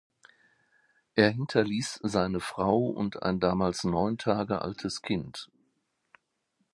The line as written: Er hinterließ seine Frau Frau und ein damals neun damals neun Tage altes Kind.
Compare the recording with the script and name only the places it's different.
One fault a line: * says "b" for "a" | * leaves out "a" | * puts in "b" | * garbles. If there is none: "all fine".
* leaves out "Frau"
* leaves out "damals neun"